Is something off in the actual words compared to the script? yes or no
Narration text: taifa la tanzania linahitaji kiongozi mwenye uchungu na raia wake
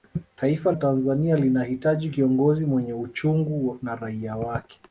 yes